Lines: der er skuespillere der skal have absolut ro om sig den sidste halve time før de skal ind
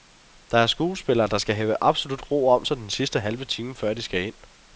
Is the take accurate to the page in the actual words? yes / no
yes